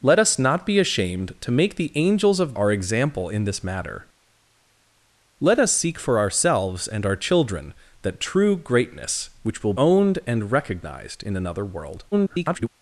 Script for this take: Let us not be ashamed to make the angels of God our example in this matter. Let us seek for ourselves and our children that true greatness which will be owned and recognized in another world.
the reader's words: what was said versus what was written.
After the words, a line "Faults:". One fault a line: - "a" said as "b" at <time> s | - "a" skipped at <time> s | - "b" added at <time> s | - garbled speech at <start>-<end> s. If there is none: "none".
Let us not be ashamed to make the angels of Our example in this matter. Let us seek for ourselves and our children that true greatness which will owned and recognized in another world. [garbled]
Faults:
- "God" skipped at 2.5 s
- "be" skipped at 9.7 s
- garbled speech at 12.1-12.7 s